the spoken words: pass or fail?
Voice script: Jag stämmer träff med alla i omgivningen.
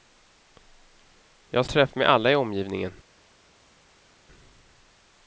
fail